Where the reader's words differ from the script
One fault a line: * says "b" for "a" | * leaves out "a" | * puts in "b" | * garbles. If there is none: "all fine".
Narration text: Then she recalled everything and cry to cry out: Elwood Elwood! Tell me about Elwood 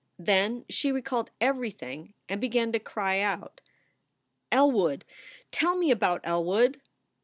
* says "began" for "cry"
* leaves out "Elwood"